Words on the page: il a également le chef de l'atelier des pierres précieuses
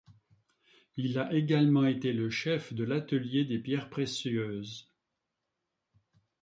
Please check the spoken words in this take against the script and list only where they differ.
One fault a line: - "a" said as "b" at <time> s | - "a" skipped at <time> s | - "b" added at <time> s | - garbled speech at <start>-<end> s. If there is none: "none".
- "été" added at 1.9 s